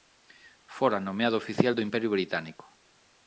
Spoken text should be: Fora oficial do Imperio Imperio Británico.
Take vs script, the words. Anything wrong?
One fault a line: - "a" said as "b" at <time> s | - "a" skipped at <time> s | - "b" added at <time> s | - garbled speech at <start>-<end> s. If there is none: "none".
- "nomeado" added at 1.1 s
- "Imperio" skipped at 2.1 s